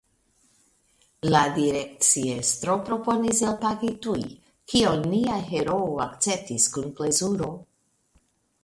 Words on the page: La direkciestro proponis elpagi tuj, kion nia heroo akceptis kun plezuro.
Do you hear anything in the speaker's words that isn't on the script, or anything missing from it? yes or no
no